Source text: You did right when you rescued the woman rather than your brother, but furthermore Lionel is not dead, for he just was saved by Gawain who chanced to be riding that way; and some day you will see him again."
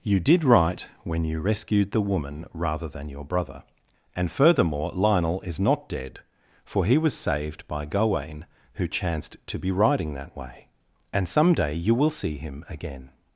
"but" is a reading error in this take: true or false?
true